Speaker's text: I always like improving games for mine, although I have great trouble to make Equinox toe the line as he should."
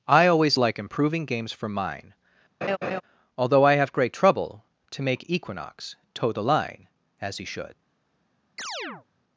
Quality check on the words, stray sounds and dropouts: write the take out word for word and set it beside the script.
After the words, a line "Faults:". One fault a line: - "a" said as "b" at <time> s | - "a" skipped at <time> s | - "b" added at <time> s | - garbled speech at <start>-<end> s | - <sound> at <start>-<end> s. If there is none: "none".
I always like improving games for mine, although I have great trouble to make Equinox toe the line as he should."
Faults:
- laugh at 2.6-3.0 s
- chirp at 8.6-9.1 s